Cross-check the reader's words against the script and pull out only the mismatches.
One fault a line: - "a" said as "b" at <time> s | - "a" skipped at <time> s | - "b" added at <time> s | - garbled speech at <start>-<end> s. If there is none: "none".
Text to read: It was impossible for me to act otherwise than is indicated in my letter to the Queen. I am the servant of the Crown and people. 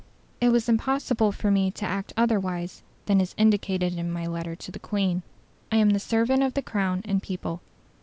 none